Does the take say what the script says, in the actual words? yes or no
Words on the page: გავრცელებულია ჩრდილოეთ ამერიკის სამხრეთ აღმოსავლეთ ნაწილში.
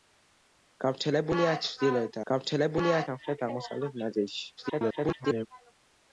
no